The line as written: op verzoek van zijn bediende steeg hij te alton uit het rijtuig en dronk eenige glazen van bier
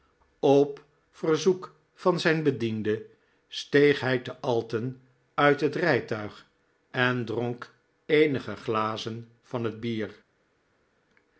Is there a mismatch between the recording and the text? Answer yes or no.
yes